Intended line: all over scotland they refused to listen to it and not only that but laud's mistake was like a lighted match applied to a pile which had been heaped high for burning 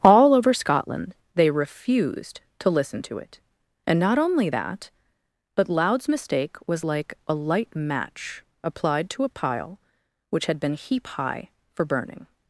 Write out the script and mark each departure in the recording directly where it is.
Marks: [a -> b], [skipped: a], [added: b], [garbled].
all over scotland they refused to listen to it and not only that but laud's mistake was like a [lighted -> light] match applied to a pile which had been [heaped -> heap] high for burning